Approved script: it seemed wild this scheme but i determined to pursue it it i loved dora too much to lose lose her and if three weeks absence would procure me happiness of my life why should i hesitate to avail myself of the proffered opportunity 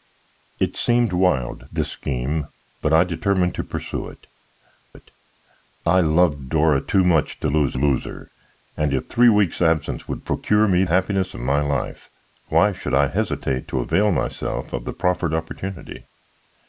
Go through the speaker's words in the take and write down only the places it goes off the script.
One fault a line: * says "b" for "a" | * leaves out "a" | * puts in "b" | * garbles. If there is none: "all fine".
all fine